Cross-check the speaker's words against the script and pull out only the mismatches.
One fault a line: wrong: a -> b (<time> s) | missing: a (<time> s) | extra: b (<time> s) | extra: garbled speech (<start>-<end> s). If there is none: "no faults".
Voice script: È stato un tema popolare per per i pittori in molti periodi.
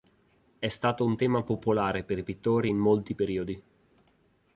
missing: per (2.2 s)